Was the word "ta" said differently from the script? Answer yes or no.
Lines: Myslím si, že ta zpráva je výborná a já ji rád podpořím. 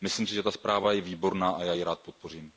no